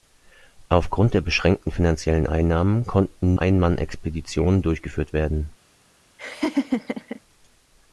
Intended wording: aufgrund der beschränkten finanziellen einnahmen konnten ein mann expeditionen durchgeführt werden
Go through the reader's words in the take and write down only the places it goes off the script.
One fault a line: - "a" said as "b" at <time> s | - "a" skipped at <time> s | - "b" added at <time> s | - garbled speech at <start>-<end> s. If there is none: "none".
none